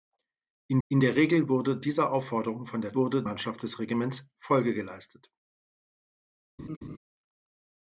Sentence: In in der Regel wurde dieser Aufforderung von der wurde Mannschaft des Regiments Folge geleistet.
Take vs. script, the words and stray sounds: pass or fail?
fail